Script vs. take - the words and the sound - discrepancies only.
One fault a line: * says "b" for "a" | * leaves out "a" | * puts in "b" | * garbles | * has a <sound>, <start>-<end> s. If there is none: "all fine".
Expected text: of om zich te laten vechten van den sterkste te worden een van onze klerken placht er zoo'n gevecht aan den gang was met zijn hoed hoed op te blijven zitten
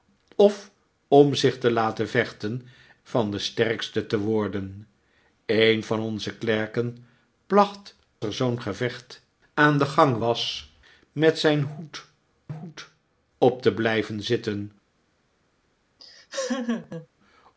* has a laugh, 16.0-17.1 s